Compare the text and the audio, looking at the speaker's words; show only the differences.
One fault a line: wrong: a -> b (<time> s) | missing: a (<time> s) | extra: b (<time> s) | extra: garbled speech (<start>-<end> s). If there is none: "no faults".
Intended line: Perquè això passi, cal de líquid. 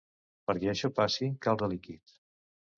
no faults